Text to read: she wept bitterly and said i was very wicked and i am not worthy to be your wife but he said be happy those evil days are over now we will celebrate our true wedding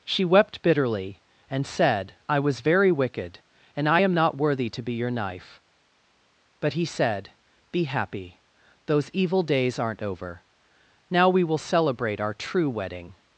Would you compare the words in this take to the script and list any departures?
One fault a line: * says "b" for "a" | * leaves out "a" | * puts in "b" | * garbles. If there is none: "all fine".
* says "knife" for "wife"
* says "aren't" for "are"